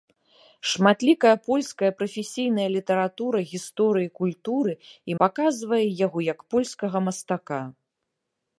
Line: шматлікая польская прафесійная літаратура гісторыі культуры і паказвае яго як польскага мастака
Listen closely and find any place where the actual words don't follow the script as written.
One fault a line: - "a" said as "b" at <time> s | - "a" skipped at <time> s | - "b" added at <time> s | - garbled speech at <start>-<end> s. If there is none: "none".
none